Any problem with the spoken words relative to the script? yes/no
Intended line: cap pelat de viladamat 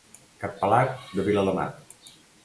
no